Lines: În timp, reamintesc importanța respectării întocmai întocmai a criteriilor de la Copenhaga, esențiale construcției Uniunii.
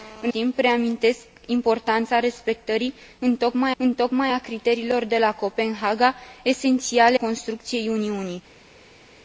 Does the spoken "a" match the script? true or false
true